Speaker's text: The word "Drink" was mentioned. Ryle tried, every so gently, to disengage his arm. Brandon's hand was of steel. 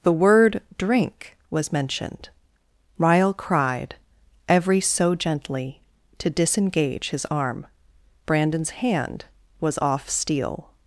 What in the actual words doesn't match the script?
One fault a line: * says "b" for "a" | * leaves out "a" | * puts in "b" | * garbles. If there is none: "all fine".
* says "cried" for "tried"
* says "off" for "of"